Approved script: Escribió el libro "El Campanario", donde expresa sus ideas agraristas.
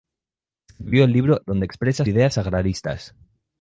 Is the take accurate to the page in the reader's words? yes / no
no